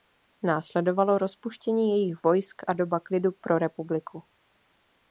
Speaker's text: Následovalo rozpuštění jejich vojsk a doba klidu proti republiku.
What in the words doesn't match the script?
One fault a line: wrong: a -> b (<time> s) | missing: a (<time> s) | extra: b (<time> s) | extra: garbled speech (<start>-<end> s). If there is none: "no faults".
wrong: proti -> pro (3.3 s)